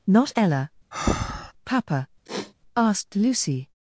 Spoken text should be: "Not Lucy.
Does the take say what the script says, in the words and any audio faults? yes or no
no